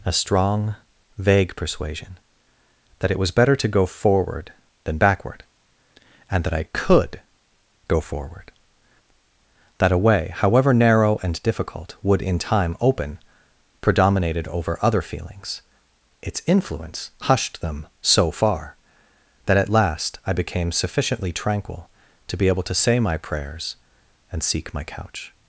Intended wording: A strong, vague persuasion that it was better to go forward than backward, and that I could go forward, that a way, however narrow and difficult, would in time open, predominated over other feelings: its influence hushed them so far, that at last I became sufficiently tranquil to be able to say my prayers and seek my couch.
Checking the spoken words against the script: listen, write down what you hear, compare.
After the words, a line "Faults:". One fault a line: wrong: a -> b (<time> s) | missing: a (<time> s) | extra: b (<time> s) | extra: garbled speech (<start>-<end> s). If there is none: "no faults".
A strong, vague persuasion that it was better to go forward than backward, and that I could go forward, that a way, however narrow and difficult, would in time open, predominated over other feelings: its influence hushed them so far, that at last I became sufficiently tranquil to be able to say my prayers and seek my couch.
Faults:
no faults